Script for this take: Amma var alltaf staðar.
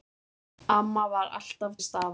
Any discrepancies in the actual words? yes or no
no